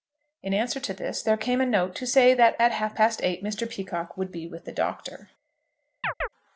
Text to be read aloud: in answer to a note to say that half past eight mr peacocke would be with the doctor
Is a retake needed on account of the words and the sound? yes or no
yes